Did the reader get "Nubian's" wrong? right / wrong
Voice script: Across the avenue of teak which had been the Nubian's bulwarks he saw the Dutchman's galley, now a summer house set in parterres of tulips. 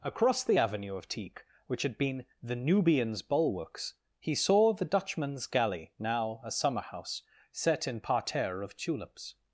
right